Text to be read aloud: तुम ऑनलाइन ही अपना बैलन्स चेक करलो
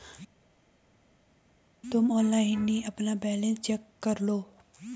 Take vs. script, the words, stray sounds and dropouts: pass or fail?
pass